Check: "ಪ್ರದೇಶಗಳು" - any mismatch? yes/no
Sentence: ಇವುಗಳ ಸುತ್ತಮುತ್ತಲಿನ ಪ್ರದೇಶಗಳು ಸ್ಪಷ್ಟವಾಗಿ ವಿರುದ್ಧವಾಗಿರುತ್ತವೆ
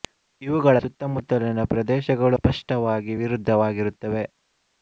no